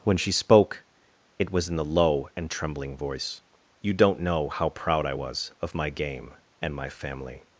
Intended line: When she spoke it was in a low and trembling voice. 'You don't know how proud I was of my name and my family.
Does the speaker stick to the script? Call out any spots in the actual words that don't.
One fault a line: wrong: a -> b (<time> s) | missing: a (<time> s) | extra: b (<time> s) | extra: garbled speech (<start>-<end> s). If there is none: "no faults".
wrong: a -> the (1.8 s)
wrong: name -> game (5.9 s)